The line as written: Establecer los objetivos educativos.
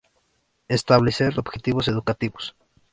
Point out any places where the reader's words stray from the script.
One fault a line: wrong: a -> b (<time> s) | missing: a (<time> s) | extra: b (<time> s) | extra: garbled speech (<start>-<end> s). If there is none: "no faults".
missing: los (1.4 s)